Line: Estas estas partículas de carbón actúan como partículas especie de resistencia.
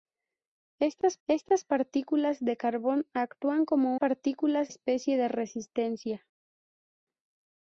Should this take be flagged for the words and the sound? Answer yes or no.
no